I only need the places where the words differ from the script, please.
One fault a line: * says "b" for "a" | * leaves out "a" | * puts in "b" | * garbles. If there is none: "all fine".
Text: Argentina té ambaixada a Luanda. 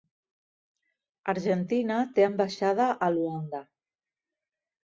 all fine